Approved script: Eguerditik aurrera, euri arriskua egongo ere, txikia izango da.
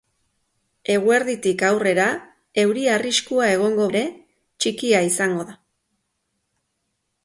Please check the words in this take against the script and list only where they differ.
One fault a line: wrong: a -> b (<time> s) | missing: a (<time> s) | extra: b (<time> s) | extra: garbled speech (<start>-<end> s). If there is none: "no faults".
no faults